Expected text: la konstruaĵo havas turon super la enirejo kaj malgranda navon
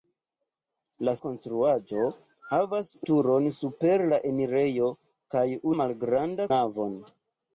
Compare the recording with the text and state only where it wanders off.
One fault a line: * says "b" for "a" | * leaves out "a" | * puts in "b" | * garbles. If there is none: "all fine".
all fine